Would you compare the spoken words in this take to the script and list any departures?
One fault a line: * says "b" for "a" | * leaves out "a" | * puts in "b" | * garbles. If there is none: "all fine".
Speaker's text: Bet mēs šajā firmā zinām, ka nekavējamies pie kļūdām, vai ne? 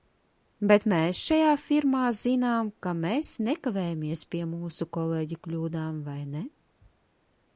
* puts in "mēs"
* puts in "mūsu kolēģu"